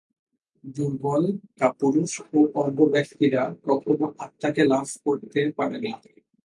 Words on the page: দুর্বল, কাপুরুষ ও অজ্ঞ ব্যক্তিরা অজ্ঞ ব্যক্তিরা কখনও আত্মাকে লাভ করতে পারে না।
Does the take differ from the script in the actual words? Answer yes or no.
yes